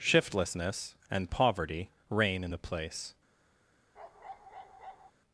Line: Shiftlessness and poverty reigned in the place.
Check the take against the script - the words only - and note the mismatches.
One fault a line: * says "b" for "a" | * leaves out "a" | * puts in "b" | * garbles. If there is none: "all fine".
* says "reign" for "reigned"